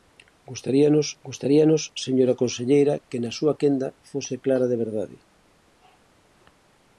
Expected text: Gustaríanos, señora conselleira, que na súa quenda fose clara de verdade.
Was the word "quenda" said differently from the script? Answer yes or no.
no